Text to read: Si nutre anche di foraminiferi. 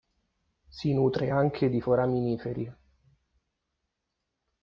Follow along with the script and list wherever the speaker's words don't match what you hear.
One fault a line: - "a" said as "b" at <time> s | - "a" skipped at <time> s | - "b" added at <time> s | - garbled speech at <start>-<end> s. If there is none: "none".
none